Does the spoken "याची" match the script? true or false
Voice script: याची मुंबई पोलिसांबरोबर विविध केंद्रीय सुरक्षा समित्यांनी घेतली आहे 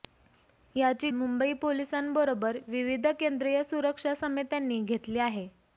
true